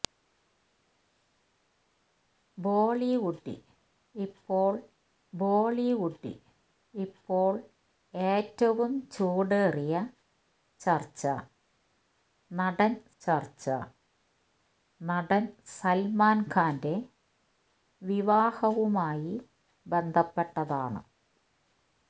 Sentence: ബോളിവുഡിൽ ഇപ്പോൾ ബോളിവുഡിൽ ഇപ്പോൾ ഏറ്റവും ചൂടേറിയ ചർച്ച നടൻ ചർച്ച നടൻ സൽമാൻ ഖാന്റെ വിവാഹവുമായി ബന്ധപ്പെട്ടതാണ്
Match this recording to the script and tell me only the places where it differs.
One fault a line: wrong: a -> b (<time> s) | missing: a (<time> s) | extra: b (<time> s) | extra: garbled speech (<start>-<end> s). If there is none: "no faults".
no faults